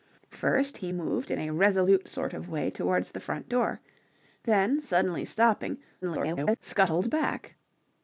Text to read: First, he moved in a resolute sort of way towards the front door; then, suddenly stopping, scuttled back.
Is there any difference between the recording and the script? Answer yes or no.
yes